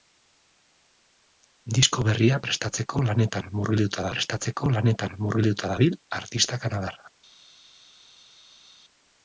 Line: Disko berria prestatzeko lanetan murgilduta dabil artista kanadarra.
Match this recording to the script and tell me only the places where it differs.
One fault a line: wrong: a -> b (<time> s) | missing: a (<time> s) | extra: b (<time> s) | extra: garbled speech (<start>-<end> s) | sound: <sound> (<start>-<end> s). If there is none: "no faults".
extra: prestatzeko lanetan murgilduta (4.2 s)